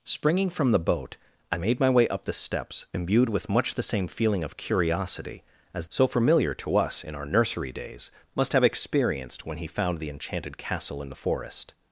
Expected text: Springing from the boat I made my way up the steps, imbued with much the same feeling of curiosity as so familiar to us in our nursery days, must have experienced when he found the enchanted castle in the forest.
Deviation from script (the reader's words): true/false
false